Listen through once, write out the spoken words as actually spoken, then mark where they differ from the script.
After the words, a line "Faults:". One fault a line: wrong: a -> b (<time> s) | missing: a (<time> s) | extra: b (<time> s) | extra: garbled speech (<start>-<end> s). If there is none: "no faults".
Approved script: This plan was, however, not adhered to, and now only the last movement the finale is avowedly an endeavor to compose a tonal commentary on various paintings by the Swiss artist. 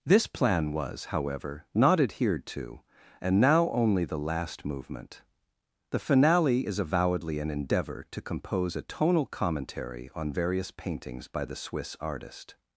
This plan was, however, not adhered to, and now only the last movement the finale is avowedly an endeavor to compose a tonal commentary on various paintings by the Swiss artist.
Faults:
no faults